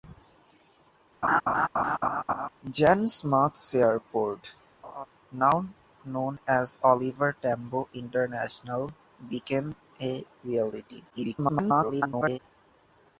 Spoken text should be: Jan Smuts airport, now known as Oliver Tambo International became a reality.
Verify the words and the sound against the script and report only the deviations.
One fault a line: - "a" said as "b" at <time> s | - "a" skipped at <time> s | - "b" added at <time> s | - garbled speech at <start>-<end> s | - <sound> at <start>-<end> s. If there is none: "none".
- laugh at 1.2-2.5 s
- laugh at 4.8-5.1 s
- garbled speech at 11.1-12.4 s